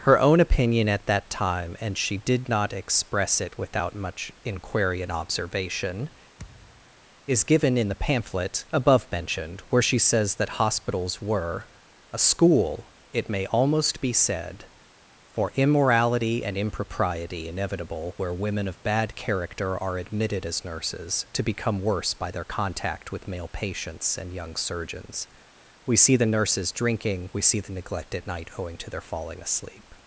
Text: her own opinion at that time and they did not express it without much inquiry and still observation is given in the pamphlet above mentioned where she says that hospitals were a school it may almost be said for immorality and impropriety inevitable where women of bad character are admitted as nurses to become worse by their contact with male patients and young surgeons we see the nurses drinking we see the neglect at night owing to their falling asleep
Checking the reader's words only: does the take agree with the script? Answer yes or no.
no